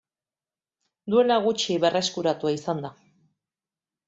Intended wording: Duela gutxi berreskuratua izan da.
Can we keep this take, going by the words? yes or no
yes